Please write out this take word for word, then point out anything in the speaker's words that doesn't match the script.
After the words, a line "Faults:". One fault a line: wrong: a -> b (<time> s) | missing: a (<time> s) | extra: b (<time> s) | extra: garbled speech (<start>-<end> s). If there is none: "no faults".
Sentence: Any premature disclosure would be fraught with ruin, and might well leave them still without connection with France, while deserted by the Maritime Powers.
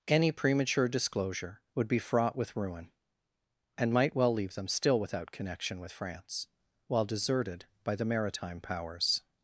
Any premature disclosure would be fraught with ruin, and might well leave them still without connection with France, while deserted by the Maritime Powers.
Faults:
no faults